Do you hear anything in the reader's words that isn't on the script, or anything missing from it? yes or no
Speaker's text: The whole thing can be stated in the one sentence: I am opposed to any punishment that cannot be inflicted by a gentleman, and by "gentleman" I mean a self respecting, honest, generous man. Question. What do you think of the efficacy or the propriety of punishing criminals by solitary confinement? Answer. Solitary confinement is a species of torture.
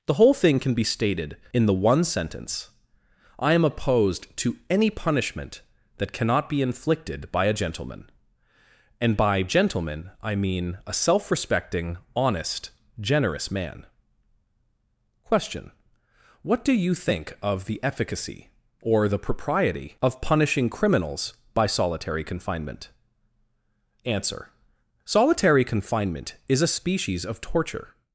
no